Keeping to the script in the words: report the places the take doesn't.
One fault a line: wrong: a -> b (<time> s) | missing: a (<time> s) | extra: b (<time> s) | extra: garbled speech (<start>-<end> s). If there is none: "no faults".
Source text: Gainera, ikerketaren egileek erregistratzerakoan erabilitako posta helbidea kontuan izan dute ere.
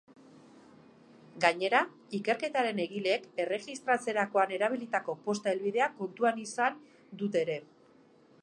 no faults